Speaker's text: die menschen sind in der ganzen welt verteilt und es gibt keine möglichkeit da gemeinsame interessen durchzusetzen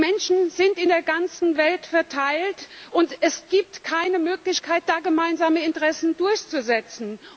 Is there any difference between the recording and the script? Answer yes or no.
no